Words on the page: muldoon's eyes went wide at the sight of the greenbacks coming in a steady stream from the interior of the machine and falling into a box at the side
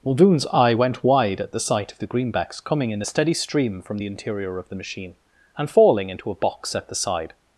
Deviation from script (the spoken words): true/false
true